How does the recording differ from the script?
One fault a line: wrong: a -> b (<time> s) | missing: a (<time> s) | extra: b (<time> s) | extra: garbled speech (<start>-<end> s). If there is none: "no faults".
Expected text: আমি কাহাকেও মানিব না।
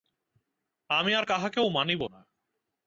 extra: আর (1.1 s)